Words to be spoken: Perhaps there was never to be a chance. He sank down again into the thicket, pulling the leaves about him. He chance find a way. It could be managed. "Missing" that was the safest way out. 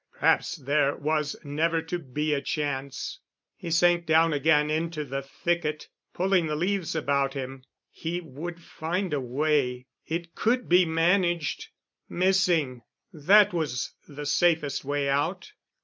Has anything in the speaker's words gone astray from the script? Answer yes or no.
yes